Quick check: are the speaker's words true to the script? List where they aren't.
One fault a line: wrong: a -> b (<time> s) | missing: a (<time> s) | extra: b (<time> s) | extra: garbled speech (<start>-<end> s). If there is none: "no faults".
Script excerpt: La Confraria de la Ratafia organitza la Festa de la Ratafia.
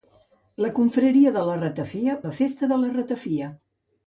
missing: organitza (2.1 s)